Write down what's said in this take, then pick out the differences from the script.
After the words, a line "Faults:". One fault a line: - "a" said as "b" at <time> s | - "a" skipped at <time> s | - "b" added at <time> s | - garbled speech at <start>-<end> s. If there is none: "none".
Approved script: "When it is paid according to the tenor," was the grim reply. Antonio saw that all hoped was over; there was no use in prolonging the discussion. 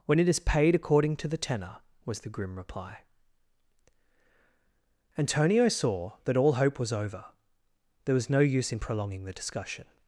"When it is paid according to the tenor," was the grim reply. Antonio saw that all hope was over; there was no use in prolonging the discussion.
Faults:
- "hoped" said as "hope" at 6.5 s